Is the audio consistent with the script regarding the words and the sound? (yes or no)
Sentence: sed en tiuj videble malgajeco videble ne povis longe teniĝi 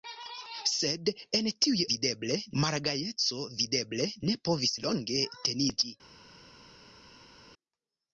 yes